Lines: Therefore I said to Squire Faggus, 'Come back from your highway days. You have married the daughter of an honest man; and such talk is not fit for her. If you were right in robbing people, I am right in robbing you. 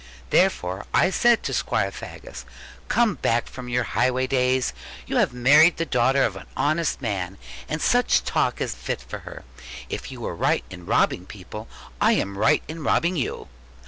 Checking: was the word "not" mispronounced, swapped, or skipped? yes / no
yes